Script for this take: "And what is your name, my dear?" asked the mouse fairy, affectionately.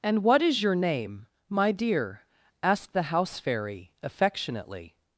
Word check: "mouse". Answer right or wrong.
wrong